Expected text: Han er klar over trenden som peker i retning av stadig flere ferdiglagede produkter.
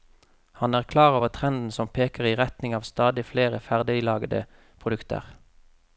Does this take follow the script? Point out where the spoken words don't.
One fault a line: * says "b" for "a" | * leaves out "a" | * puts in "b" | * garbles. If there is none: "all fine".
all fine